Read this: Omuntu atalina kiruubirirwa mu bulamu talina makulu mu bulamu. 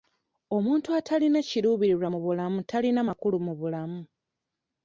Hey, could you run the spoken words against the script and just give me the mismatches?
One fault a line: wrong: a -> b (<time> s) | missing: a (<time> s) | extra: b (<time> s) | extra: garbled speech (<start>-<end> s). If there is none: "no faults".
no faults